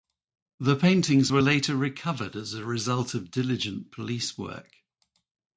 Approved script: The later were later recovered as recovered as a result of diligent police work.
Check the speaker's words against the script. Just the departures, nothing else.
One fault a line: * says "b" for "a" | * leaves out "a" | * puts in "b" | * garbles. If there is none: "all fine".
* says "paintings" for "later"
* leaves out "recovered as"